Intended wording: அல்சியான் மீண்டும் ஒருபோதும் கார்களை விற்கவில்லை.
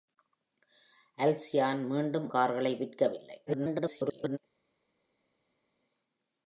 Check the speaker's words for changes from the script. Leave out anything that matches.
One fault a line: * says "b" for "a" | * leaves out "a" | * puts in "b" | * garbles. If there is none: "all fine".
* leaves out "ஒருபோதும்"
* garbles